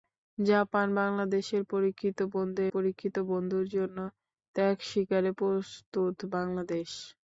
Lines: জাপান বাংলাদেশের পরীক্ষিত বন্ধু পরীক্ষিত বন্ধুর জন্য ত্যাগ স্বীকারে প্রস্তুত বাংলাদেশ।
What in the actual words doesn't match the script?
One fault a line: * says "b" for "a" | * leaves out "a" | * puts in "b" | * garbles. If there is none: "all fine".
all fine